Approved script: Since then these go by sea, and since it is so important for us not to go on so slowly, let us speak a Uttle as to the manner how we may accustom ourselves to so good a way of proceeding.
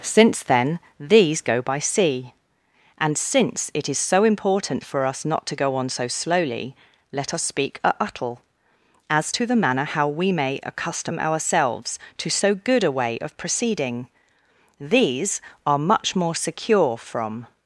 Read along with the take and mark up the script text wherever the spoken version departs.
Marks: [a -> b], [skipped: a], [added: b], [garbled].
Since then these go by sea, and since it is so important for us not to go on so slowly, let us speak a Uttle as to the manner how we may accustom ourselves to so good a way of proceeding. [added: These are much more secure from]